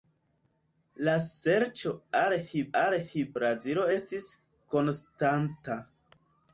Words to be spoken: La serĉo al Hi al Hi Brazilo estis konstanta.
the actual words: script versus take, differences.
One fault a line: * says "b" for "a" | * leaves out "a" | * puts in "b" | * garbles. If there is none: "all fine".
all fine